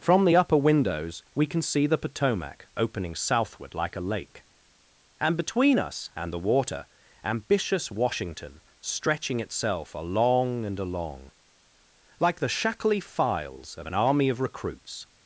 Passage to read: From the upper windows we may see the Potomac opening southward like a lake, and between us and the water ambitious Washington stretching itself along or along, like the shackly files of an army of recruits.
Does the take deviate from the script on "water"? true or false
false